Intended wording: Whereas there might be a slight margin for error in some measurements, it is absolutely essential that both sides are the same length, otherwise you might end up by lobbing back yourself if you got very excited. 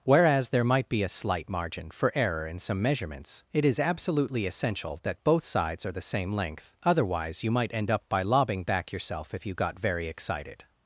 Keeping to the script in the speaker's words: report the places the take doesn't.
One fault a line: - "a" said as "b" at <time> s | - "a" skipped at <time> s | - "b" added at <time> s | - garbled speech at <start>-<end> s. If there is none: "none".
none